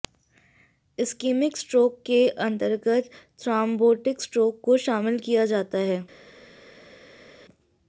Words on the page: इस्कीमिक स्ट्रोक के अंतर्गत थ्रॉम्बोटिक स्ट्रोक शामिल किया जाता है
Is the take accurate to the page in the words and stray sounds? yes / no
no